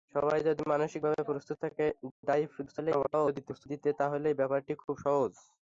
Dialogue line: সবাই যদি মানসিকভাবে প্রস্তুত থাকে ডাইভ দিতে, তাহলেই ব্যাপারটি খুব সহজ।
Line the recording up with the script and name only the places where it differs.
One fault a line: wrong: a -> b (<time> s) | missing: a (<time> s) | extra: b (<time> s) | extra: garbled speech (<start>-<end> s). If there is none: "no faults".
extra: garbled speech (2.7-3.7 s)